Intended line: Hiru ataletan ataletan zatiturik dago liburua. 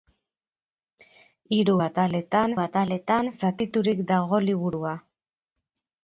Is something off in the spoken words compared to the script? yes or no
no